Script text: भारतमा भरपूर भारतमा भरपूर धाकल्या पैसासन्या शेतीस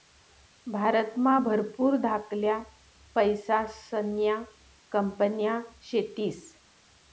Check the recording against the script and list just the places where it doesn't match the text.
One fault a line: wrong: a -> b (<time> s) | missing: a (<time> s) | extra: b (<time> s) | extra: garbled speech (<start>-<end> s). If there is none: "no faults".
missing: भारतमा भरपूर (2.0 s)
extra: कंपन्या (4.9 s)